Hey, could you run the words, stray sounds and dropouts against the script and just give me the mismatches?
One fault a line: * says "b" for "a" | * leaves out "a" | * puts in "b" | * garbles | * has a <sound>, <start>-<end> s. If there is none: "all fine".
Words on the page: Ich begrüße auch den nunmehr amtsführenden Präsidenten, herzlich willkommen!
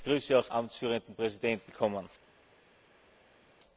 * leaves out "den nunmehr"
* leaves out "herzlich"